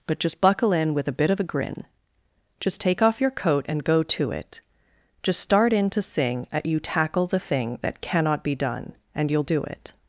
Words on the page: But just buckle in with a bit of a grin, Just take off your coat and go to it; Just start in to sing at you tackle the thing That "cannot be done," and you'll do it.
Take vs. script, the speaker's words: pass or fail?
pass